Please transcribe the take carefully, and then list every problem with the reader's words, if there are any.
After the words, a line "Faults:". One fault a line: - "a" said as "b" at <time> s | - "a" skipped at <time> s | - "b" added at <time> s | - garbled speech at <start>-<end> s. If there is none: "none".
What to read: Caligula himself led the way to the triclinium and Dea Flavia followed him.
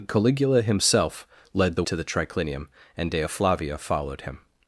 Caligula himself led the to the triclinium and Dea Flavia followed him.
Faults:
- "way" skipped at 1.8 s